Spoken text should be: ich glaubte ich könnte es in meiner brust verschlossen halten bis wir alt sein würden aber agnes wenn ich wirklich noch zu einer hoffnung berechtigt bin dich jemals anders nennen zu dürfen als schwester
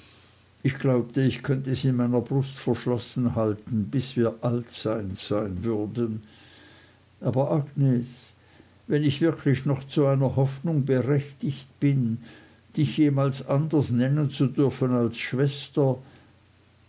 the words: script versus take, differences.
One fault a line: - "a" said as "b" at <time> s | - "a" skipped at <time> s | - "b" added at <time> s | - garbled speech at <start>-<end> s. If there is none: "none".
- "sein" added at 5.2 s